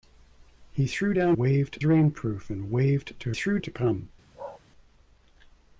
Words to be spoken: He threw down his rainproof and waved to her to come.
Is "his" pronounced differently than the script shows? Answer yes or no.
yes